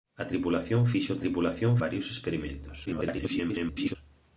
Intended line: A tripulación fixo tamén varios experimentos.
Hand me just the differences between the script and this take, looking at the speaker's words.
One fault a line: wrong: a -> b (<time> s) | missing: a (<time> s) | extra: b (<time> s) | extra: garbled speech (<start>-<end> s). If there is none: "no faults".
wrong: tamén -> tripulación (1.2 s)
extra: garbled speech (2.9-4.0 s)